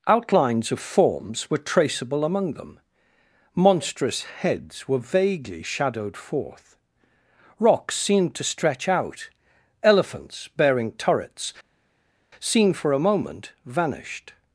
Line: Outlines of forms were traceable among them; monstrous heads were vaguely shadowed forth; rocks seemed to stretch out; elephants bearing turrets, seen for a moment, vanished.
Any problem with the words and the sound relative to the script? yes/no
no